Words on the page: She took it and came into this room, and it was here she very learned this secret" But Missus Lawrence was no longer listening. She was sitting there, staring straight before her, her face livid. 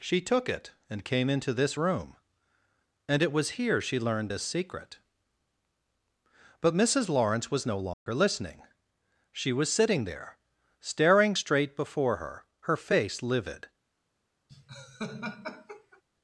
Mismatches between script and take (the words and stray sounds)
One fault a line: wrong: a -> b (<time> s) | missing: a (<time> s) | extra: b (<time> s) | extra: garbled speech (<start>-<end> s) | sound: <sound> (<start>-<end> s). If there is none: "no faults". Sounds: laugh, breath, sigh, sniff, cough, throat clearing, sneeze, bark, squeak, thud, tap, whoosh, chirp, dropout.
missing: very (4.0 s)
sound: dropout (7.9-8.1 s)
sound: laugh (14.5-16.0 s)